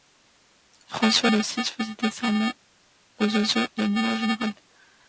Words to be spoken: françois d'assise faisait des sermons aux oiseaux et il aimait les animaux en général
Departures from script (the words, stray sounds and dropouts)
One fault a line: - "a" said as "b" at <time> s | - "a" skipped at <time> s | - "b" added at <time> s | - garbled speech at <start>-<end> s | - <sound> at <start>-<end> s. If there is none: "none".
- "il aimait" skipped at 3.8 s